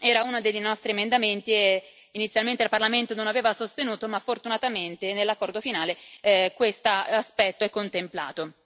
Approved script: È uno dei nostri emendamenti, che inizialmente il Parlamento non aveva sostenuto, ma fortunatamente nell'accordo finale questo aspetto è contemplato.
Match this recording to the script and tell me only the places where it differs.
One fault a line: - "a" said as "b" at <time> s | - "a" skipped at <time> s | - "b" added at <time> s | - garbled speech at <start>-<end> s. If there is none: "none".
- "È" said as "Era" at 0.0 s